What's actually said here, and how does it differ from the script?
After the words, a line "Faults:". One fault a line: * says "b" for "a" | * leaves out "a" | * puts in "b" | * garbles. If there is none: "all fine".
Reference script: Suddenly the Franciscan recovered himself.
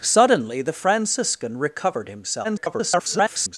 Suddenly the Franciscan recovered himself. [garbled]
Faults:
* garbles